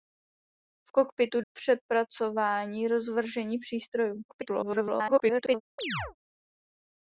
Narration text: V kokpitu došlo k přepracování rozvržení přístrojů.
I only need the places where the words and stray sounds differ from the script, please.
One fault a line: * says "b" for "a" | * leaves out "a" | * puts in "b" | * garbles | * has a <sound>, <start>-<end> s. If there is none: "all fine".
* leaves out "došlo"
* garbles
* has a chirp, 5.8-6.2 s